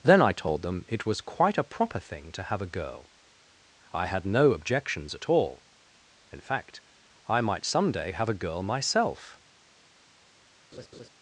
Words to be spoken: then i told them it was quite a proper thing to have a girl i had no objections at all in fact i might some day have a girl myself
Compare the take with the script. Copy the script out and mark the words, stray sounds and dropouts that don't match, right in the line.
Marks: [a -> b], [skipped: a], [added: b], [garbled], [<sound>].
then i told them it was quite a proper thing to have a girl i had no objections at all in fact i might some day have a girl myself [laugh]